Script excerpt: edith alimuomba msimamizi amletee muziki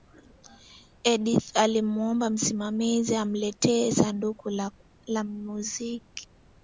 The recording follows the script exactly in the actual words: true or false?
false